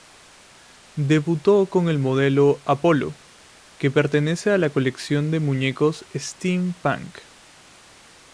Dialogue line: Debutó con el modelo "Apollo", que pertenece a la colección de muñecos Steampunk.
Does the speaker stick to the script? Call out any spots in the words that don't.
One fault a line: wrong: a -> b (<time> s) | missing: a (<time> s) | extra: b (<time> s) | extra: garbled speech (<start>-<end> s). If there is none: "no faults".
no faults